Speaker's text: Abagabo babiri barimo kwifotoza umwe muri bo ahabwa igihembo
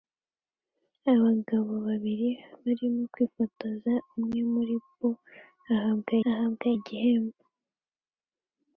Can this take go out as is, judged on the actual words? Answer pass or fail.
fail